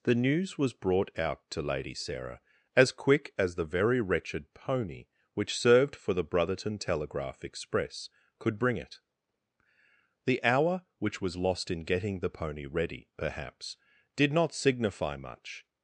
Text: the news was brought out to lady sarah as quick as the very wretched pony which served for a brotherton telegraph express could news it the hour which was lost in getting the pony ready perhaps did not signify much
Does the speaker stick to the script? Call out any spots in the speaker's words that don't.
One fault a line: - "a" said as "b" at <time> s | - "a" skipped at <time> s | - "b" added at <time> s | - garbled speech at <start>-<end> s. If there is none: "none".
- "a" said as "the" at 6.1 s
- "news" said as "bring" at 8.6 s